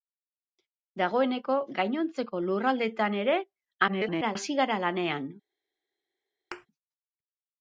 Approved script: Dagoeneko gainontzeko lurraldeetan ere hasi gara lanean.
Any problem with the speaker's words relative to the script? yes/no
yes